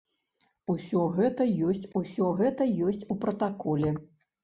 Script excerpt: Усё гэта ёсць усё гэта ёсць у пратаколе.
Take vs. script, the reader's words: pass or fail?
pass